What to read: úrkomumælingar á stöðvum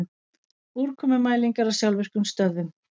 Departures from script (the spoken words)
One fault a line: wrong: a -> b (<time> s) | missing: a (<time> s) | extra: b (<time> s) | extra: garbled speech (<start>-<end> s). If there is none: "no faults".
extra: sjálfvirkum (1.8 s)